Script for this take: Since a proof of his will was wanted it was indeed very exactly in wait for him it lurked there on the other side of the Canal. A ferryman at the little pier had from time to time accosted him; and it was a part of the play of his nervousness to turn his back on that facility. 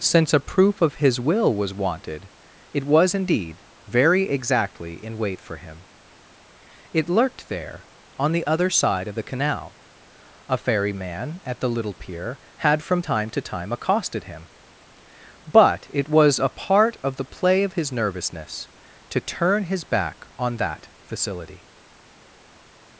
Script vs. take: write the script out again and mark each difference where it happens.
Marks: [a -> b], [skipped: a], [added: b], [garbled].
Since a proof of his will was wanted it was indeed very exactly in wait for him it lurked there on the other side of the Canal. A ferryman at the little pier had from time to time accosted him; [and -> but] it was a part of the play of his nervousness to turn his back on that facility.